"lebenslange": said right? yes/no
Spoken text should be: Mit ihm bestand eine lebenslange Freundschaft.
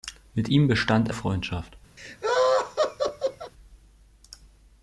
no